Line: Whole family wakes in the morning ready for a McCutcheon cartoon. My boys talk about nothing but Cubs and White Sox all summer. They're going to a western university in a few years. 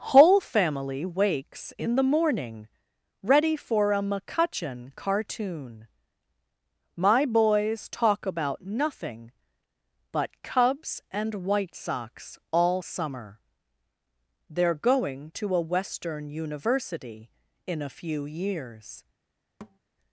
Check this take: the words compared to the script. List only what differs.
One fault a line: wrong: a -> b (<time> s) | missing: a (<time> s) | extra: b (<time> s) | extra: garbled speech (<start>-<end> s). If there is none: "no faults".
no faults